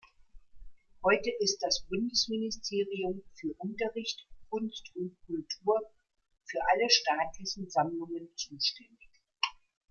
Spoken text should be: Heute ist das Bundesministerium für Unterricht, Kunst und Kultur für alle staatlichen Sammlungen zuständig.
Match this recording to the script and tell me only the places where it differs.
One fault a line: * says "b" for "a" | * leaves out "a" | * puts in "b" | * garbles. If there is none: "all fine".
all fine